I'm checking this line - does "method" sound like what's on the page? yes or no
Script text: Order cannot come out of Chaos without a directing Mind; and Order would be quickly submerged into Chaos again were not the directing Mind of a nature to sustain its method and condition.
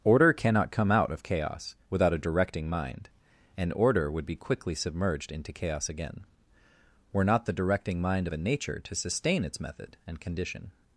yes